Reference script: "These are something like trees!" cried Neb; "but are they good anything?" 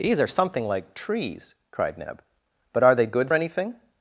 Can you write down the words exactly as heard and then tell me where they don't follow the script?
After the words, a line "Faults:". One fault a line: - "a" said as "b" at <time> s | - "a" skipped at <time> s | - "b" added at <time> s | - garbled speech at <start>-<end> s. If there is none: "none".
"These are something like trees!" cried Neb; "but are they good anything?"
Faults:
none